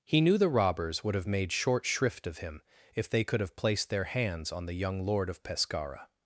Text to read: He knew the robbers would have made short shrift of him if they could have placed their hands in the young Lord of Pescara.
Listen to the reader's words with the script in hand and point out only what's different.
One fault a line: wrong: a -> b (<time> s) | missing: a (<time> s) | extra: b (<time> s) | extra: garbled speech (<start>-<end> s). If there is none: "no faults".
wrong: in -> on (4.5 s)